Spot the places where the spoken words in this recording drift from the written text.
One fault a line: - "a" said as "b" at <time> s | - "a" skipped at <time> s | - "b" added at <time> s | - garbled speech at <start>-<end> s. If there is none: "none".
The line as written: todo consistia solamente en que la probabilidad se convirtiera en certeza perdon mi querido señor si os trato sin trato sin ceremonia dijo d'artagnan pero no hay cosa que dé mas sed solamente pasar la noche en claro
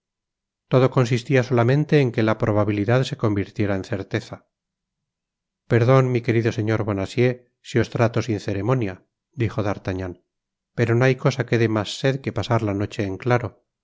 - "bonacieux" added at 6.9 s
- "trato sin" skipped at 8.4 s
- "solamente" said as "que" at 12.2 s